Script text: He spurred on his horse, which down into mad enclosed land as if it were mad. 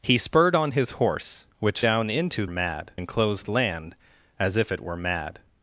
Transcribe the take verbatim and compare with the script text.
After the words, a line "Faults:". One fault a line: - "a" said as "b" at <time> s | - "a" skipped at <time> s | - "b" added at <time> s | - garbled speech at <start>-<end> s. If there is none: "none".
He spurred on his horse, which down into mad enclosed land as if it were mad.
Faults:
none